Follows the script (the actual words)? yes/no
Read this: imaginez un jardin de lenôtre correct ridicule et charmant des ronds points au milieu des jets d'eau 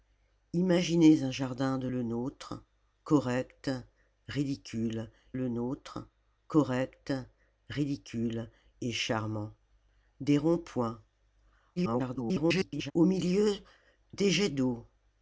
no